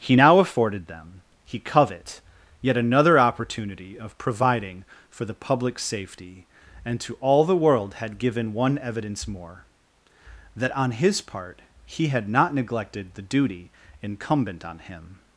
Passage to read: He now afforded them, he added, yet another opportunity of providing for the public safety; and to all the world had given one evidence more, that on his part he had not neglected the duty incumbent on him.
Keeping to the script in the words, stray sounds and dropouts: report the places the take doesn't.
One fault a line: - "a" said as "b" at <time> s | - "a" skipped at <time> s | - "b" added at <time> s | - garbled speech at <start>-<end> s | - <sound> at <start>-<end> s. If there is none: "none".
- "added" said as "covet" at 1.6 s